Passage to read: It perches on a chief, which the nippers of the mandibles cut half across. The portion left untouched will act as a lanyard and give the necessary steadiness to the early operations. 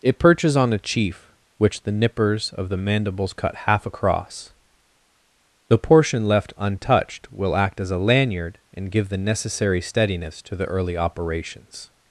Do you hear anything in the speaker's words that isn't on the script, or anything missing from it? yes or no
no